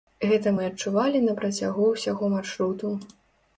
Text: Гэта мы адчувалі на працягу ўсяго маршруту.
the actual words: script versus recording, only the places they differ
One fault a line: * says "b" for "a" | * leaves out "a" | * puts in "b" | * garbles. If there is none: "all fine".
all fine